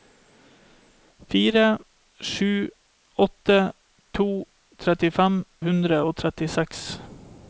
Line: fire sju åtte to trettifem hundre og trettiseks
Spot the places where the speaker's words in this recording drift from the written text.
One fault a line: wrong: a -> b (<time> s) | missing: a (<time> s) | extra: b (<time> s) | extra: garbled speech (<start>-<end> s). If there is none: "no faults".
no faults